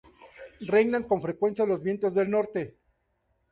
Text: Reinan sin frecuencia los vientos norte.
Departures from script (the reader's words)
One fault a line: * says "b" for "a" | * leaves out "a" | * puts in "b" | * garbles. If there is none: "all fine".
* says "con" for "sin"
* puts in "del"